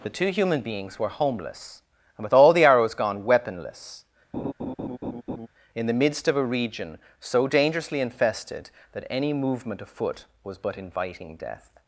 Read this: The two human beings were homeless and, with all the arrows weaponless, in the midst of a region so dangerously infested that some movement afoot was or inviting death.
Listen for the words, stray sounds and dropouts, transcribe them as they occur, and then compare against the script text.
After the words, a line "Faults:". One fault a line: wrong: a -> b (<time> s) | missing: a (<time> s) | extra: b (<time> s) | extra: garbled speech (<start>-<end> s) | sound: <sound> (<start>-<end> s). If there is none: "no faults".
The two human beings were homeless and, with all the arrows gone, weaponless, in the midst of a region so dangerously infested that any movement afoot was but inviting death.
Faults:
extra: gone (3.0 s)
sound: laugh (4.3-5.5 s)
wrong: some -> any (9.1 s)
wrong: or -> but (10.6 s)